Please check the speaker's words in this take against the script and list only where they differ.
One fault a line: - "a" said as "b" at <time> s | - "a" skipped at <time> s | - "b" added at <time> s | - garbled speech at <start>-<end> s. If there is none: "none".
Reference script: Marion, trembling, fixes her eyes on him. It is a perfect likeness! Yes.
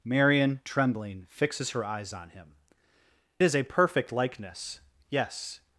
- "It" skipped at 2.5 s